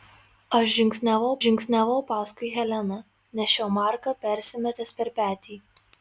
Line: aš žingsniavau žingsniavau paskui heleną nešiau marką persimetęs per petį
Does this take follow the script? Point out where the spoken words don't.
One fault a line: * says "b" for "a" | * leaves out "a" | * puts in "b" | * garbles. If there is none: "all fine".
all fine